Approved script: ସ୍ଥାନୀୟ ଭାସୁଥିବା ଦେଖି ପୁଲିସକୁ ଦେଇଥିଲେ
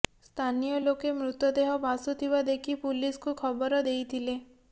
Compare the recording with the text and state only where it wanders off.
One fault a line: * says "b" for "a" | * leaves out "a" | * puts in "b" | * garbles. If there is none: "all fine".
* puts in "ଲୋକେ ମୃତଦେହ"
* puts in "ଖବର"